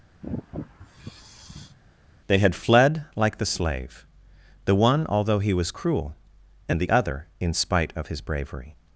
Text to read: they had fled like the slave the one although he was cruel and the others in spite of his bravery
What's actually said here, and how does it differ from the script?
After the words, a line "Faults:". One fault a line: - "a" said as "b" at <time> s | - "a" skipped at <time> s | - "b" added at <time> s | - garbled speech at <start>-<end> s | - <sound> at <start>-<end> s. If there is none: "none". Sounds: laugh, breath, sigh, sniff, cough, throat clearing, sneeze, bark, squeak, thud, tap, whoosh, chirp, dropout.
they had fled like the slave the one although he was cruel and the other in spite of his bravery
Faults:
- sigh at 0.2-1.8 s
- "others" said as "other" at 6.9 s